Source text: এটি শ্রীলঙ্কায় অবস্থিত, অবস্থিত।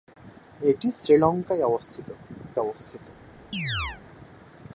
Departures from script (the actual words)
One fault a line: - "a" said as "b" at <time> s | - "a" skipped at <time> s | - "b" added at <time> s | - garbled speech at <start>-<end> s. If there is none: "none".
none